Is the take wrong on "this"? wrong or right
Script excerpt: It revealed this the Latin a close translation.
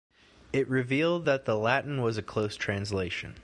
wrong